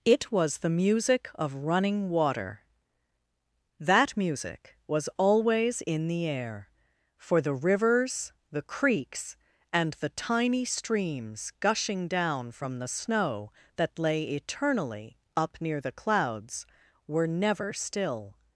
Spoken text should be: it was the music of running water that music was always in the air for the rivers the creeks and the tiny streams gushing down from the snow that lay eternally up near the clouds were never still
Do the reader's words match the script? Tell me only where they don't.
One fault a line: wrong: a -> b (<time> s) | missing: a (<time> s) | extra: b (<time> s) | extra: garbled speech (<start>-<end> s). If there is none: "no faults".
no faults